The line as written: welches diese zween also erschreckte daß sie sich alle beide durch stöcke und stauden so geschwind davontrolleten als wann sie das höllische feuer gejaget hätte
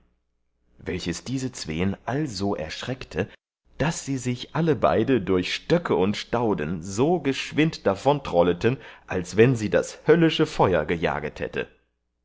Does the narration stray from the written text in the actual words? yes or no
no